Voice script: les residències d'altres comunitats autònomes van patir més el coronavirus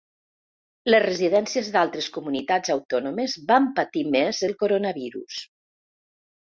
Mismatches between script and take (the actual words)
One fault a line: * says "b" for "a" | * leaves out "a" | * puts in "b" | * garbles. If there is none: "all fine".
all fine